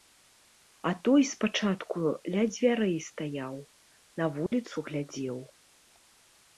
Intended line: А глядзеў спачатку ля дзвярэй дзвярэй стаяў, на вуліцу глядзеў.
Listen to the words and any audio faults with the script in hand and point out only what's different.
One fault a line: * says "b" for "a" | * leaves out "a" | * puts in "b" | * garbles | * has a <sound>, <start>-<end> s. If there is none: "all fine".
* says "той" for "глядзеў"
* leaves out "дзвярэй"
* has a dropout, 4.5-4.5 s